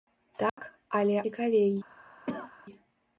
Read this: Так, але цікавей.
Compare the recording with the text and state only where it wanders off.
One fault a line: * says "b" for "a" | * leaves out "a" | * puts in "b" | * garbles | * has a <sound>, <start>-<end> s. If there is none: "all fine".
* has a dropout, 0.5-0.6 s
* has a cough, 2.3-2.5 s